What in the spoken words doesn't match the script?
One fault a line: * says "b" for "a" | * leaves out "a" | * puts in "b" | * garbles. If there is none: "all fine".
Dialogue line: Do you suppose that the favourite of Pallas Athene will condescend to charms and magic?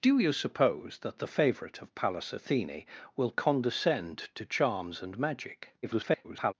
* garbles